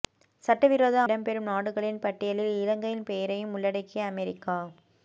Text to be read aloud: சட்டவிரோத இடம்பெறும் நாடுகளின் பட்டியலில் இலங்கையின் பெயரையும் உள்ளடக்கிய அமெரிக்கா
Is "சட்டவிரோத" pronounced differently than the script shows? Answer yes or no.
no